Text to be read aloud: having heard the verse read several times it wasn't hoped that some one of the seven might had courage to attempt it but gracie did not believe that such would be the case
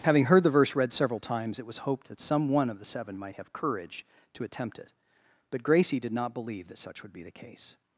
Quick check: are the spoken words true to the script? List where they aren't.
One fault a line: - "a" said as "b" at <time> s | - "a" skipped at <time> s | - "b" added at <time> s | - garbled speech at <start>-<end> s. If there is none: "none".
- "wasn't" said as "was" at 1.6 s
- "had" said as "have" at 3.3 s